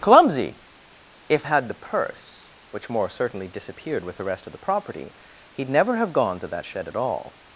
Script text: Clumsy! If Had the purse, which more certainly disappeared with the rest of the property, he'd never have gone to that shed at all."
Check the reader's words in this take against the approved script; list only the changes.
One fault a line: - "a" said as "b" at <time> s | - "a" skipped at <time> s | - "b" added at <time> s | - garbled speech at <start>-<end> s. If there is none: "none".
none